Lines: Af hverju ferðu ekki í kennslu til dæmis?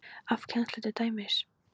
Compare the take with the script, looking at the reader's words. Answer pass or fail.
fail